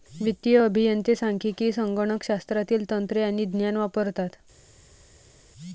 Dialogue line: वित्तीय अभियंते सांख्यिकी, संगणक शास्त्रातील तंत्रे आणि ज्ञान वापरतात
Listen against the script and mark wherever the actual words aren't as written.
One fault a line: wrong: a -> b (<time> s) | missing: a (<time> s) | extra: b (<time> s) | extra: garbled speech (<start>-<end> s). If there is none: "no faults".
no faults